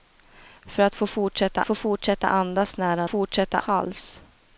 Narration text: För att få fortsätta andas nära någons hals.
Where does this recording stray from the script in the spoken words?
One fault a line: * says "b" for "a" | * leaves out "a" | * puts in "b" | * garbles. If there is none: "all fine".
* puts in "få fortsätta"
* says "fortsätta" for "någons"